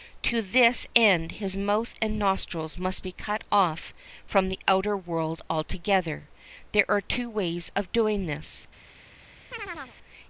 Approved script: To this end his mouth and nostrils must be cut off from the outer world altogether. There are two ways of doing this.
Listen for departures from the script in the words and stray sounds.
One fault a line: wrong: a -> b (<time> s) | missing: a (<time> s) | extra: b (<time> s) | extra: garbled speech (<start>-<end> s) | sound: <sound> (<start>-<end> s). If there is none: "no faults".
sound: chirp (9.5-10.0 s)